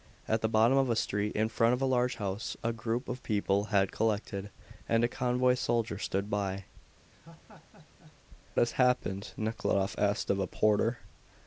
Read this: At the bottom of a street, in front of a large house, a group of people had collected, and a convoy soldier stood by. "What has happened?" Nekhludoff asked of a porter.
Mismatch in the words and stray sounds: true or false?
true